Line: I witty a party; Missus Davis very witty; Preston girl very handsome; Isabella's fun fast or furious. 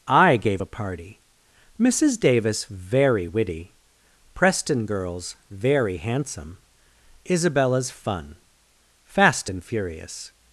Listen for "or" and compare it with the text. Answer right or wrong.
wrong